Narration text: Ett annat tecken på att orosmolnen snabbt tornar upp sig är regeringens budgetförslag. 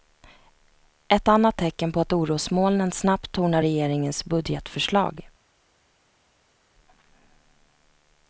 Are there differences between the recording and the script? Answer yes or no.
yes